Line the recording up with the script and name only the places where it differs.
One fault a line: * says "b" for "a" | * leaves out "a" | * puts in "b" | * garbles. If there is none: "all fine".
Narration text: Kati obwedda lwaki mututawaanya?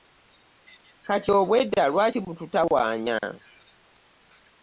all fine